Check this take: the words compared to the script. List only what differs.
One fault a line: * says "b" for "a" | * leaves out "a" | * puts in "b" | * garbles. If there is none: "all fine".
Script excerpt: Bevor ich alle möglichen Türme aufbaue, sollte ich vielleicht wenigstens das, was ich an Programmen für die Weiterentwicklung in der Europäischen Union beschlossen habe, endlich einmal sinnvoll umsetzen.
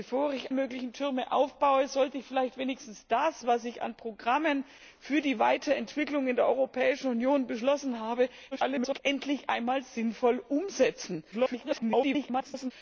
* leaves out "alle"
* garbles
* garbles